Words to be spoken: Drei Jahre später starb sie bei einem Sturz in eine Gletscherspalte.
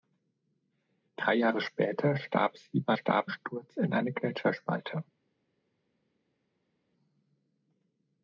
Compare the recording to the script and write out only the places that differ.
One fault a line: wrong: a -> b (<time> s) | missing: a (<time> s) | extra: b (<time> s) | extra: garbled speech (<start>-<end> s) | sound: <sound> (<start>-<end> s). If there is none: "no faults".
wrong: einem -> starb (2.9 s)